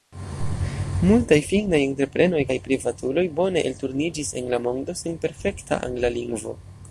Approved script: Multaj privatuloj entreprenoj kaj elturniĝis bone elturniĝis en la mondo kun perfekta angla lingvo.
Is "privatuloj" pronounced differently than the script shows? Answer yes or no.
yes